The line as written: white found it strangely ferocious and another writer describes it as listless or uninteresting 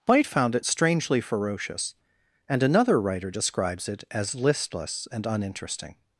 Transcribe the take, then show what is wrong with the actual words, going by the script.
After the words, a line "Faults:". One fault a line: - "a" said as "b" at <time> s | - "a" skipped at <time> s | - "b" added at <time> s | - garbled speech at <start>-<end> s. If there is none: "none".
white found it strangely ferocious and another writer describes it as listless and uninteresting
Faults:
- "or" said as "and" at 5.1 s